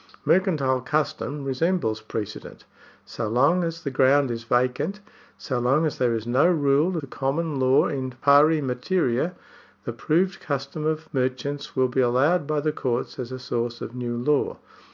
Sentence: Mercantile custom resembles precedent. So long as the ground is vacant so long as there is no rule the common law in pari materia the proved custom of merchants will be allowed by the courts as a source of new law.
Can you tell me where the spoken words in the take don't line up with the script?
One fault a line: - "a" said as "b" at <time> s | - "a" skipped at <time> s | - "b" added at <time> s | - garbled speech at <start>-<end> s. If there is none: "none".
none